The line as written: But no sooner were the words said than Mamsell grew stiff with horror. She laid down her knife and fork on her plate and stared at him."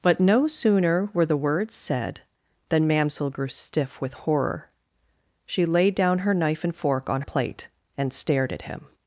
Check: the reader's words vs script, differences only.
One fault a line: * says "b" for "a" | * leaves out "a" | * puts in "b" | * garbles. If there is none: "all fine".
* leaves out "her"